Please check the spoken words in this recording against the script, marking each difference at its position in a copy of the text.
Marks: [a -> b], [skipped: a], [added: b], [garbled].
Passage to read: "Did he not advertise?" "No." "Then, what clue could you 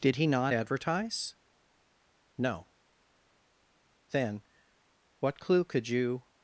"Did he not advertise?" "No." "Then, what clue could you